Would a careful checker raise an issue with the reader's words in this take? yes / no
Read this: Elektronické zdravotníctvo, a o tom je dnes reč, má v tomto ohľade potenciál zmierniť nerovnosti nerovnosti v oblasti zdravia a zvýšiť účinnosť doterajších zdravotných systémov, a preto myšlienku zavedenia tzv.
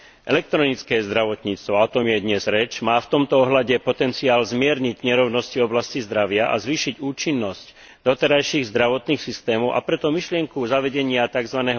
yes